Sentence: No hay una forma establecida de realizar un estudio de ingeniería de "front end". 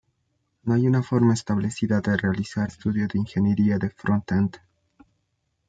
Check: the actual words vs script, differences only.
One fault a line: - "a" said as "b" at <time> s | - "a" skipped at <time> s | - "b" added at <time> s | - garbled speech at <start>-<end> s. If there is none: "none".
- "un" skipped at 2.7 s